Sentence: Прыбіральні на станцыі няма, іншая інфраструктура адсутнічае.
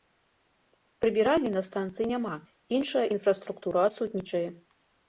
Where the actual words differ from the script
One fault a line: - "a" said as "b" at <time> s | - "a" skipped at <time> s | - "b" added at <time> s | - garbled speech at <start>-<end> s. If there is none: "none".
none